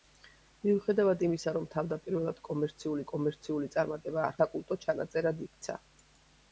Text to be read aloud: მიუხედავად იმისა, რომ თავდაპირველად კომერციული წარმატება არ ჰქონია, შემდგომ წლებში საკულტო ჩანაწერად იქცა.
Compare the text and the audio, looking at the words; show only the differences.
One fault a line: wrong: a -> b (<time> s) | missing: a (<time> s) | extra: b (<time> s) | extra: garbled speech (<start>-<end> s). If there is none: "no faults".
extra: კომერციული (3.1 s)
missing: ჰქონია შემდგომ წლებში (4.3 s)